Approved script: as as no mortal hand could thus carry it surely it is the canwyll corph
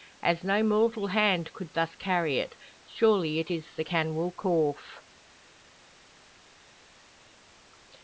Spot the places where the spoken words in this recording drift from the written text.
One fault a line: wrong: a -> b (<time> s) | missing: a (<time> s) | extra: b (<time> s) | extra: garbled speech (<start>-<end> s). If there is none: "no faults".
missing: as (0.4 s)